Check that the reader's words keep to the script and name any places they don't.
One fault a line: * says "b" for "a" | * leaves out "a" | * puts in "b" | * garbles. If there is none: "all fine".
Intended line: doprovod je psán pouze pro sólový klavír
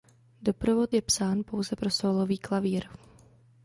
all fine